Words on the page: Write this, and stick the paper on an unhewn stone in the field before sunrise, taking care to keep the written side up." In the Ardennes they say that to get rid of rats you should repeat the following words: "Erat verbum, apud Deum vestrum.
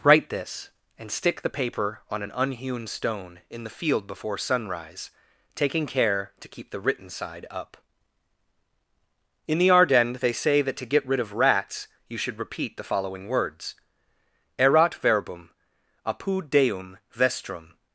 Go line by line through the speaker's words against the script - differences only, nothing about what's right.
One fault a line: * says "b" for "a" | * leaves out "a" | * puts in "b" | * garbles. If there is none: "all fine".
all fine